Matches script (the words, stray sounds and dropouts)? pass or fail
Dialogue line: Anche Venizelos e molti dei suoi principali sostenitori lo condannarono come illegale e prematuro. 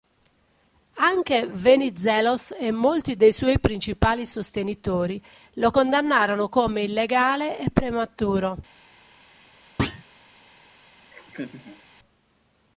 fail